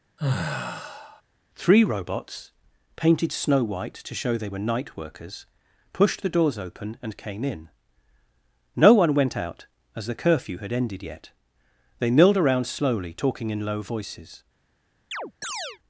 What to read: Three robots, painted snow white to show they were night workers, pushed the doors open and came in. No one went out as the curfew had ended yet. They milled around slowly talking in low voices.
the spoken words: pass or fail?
pass